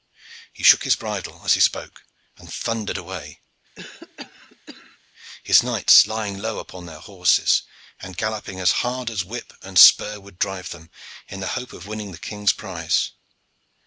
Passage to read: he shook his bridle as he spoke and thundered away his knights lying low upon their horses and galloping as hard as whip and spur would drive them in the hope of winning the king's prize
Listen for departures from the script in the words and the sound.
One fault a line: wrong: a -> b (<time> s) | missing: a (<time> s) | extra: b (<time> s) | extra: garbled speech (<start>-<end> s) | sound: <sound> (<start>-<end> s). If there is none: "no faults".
sound: cough (3.8-5.0 s)